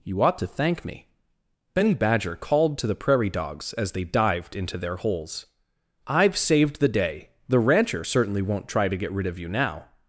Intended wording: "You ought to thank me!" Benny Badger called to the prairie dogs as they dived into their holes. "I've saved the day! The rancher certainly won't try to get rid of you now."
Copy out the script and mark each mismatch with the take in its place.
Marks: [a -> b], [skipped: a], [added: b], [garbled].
"You ought to thank me!" Benny Badger called to the prairie dogs as they dived into their holes. "I've saved the day! The rancher certainly won't try to get rid of you now."